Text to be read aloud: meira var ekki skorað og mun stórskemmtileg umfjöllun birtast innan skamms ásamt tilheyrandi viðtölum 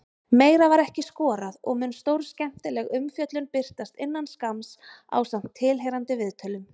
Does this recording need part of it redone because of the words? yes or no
no